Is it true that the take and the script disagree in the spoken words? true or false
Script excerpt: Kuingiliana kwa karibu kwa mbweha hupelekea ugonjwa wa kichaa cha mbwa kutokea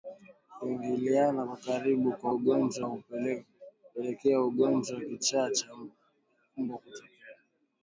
true